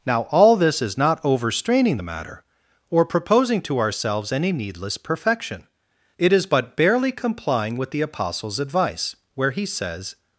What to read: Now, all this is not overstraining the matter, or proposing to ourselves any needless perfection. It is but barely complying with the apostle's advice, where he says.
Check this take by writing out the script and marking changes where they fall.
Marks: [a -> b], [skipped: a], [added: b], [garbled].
Now, all this is not overstraining the matter, or proposing to ourselves any needless perfection. It is but barely complying with the apostle's advice, where he says.